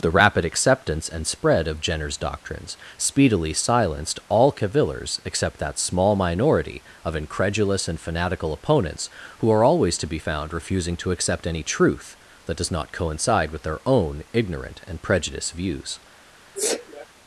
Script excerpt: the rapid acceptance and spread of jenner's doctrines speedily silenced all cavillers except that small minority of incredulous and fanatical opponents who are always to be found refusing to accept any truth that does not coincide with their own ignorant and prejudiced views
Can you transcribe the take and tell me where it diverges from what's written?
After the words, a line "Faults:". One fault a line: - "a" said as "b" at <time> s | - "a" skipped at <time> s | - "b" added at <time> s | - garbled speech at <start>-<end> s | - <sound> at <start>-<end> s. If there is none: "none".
the rapid acceptance and spread of jenner's doctrines speedily silenced all cavillers except that small minority of incredulous and fanatical opponents who are always to be found refusing to accept any truth that does not coincide with their own ignorant and prejudiced views
Faults:
- sneeze at 16.6-17.1 s